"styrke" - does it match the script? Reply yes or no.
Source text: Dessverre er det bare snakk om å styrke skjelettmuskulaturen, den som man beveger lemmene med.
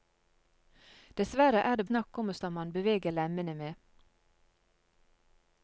no